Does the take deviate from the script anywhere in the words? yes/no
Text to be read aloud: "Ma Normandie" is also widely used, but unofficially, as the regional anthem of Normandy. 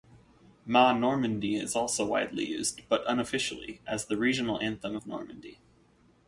no